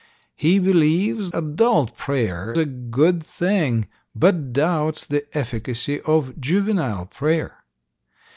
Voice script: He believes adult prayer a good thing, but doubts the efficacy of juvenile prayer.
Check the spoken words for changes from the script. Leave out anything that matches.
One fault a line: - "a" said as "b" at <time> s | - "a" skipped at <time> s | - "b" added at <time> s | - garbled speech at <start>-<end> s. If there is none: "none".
none